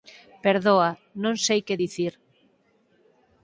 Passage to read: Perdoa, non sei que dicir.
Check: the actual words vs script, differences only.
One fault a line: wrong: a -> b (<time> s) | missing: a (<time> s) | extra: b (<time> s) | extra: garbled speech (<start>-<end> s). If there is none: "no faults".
no faults